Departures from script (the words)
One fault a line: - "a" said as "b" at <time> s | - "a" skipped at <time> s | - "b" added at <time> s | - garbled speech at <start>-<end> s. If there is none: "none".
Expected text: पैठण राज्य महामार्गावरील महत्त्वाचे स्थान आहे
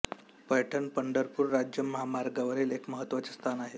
- "पंढरपूर" added at 0.9 s
- "एक" added at 2.7 s